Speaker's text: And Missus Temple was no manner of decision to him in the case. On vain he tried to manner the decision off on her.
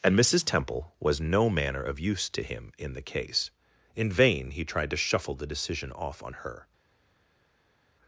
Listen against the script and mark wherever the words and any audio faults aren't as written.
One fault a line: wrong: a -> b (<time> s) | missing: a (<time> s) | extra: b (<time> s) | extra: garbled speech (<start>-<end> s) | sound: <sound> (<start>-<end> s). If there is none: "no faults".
wrong: decision -> use (2.0 s)
wrong: On -> In (4.0 s)
wrong: manner -> shuffle (5.0 s)